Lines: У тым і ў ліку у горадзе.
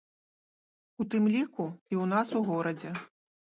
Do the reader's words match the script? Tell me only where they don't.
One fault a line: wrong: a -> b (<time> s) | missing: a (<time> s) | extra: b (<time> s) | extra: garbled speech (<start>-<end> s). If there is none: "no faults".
extra: ліку (1.3 s)
wrong: ліку -> нас (2.2 s)